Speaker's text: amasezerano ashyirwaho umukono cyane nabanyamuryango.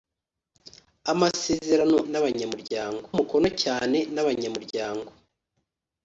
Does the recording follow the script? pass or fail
fail